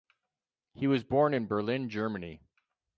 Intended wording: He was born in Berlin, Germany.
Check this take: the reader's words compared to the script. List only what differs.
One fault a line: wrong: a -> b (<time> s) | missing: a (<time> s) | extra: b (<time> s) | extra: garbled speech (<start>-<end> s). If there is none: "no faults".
no faults